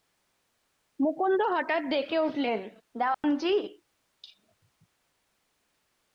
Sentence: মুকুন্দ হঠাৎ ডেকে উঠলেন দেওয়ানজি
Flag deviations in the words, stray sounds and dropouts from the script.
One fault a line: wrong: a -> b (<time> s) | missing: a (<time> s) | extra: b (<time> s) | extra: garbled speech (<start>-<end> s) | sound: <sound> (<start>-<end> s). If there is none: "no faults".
sound: dropout (3.1-3.2 s)